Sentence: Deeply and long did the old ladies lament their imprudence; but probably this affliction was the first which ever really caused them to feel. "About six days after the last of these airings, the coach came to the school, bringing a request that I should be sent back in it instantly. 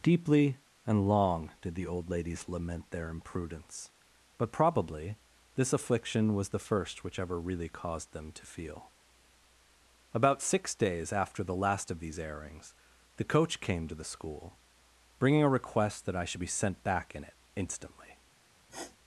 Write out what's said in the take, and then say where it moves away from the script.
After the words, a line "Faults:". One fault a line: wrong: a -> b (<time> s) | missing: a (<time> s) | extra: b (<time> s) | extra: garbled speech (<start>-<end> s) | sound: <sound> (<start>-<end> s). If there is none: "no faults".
Deeply and long did the old ladies lament their imprudence; but probably this affliction was the first which ever really caused them to feel. "About six days after the last of these airings, the coach came to the school, bringing a request that I should be sent back in it instantly.
Faults:
sound: sniff (18.7-19.0 s)